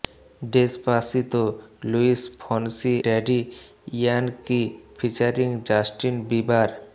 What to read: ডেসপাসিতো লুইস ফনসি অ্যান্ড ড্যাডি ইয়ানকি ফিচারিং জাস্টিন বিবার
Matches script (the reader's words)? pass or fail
fail